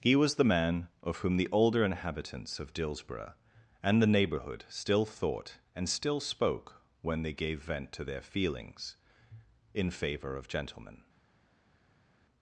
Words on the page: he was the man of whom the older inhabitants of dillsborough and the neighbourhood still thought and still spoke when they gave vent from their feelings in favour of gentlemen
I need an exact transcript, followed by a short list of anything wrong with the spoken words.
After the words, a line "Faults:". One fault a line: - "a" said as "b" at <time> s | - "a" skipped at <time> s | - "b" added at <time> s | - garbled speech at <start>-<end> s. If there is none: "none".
he was the man of whom the older inhabitants of dillsborough and the neighbourhood still thought and still spoke when they gave vent to their feelings in favour of gentlemen
Faults:
- "from" said as "to" at 7.9 s